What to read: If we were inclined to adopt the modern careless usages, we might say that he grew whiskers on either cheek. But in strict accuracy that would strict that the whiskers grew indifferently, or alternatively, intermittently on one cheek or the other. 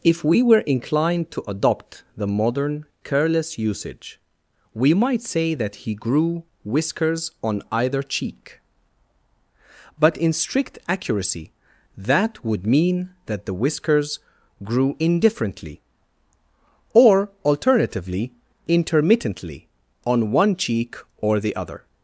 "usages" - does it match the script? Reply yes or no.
no